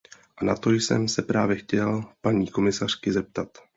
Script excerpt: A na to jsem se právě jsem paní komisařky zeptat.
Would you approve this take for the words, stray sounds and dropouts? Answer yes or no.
no